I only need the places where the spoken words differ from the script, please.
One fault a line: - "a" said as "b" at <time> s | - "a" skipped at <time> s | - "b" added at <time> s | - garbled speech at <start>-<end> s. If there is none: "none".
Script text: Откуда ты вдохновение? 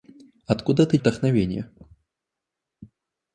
none